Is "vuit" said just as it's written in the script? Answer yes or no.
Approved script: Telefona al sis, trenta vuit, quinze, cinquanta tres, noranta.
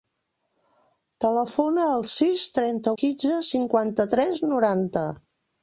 no